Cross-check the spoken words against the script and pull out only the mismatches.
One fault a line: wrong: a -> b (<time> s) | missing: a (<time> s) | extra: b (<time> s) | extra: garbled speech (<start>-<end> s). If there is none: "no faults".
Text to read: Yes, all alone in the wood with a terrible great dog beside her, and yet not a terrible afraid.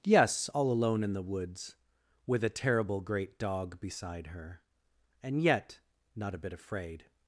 wrong: wood -> woods (1.2 s)
wrong: terrible -> bit (6.4 s)